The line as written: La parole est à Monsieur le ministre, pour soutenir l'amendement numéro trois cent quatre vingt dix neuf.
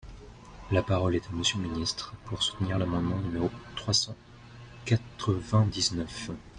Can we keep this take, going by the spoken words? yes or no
yes